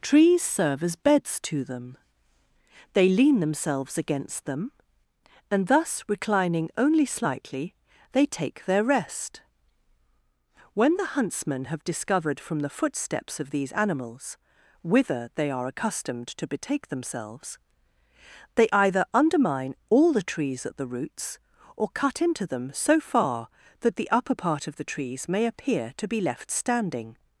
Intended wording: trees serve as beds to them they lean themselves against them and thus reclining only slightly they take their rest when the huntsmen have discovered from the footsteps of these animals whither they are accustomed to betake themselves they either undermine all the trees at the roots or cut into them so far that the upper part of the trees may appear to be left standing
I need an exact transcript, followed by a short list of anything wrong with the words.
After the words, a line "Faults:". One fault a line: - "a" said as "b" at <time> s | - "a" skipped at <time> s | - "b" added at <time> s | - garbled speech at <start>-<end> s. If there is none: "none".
trees serve as beds to them they lean themselves against them and thus reclining only slightly they take their rest when the huntsmen have discovered from the footsteps of these animals whither they are accustomed to betake themselves they either undermine all the trees at the roots or cut into them so far that the upper part of the trees may appear to be left standing
Faults:
none